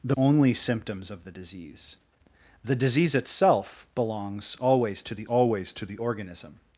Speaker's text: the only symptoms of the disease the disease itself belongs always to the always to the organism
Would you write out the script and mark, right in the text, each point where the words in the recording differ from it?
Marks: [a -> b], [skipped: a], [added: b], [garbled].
the only symptoms of the disease the disease itself belongs always to the always to the organism